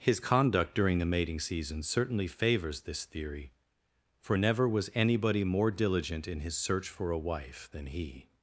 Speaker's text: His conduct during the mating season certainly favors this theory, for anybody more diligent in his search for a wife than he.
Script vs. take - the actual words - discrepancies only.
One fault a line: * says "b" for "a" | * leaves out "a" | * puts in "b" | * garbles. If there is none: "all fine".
* puts in "never was"